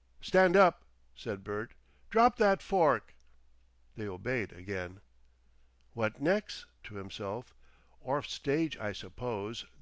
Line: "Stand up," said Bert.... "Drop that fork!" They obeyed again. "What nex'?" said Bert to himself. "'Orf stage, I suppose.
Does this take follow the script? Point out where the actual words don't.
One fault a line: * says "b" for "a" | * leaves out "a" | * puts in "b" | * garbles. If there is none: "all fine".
* leaves out "said Bert"